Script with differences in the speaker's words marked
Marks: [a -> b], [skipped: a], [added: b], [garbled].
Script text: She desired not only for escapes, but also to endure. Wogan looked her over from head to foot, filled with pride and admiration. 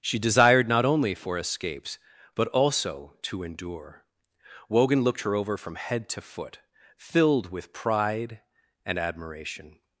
She desired not only for escapes, but also to endure. Wogan looked her over from head to foot, filled with pride and admiration.